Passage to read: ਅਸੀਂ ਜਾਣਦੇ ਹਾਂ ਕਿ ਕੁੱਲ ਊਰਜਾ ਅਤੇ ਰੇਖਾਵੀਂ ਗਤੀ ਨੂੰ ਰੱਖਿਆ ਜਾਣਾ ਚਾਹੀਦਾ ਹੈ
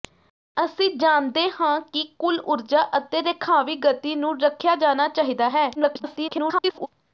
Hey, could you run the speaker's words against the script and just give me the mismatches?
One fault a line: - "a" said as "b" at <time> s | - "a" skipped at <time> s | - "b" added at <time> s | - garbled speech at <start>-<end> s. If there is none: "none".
- garbled speech at 5.8-6.9 s